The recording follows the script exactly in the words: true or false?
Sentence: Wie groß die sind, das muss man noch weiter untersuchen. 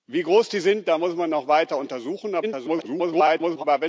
false